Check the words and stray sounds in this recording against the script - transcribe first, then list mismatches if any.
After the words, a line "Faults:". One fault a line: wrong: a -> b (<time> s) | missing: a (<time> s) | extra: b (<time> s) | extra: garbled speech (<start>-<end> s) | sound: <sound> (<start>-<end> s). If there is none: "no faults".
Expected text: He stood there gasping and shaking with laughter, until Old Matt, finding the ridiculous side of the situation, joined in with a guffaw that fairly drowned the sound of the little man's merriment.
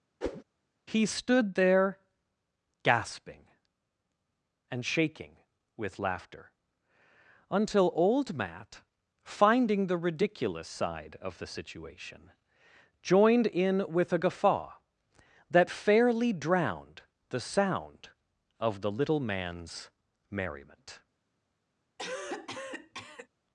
He stood there gasping and shaking with laughter, until Old Matt, finding the ridiculous side of the situation, joined in with a guffaw that fairly drowned the sound of the little man's merriment.
Faults:
sound: whoosh (0.2-0.4 s)
sound: cough (22.0-23.3 s)